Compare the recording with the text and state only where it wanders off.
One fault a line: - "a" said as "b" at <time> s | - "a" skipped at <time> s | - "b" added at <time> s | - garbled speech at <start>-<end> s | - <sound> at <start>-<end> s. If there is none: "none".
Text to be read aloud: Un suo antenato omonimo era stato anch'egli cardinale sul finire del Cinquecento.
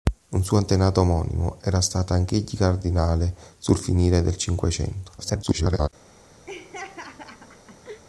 - garbled speech at 5.2-5.9 s
- laugh at 6.5-8.0 s